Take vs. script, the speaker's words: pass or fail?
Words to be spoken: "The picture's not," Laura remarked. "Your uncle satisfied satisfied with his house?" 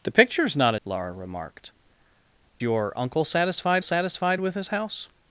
pass